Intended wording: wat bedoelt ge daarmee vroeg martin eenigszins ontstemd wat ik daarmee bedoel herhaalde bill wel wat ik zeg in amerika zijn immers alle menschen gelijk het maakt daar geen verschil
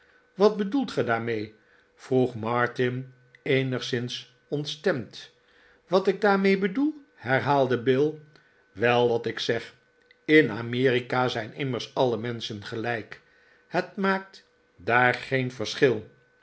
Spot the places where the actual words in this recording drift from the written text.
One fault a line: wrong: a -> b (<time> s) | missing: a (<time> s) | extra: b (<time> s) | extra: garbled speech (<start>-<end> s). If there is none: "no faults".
no faults